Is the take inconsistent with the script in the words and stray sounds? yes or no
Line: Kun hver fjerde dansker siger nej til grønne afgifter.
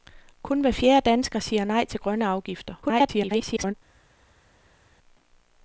yes